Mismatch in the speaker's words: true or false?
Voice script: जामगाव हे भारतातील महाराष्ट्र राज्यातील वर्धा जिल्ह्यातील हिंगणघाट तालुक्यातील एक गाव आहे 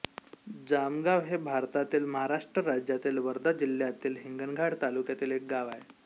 false